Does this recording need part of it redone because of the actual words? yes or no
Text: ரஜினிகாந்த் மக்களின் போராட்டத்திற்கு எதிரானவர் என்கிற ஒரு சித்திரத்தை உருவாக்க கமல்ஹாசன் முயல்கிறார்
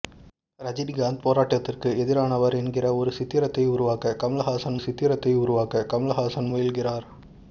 yes